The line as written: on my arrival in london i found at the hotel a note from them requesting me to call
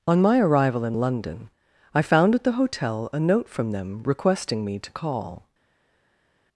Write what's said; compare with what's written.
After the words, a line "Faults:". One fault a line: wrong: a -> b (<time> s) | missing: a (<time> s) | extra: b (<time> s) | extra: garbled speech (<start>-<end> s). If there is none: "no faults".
on my arrival in london i found at the hotel a note from them requesting me to call
Faults:
no faults